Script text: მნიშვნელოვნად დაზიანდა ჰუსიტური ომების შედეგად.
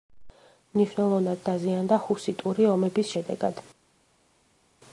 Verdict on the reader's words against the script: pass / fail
pass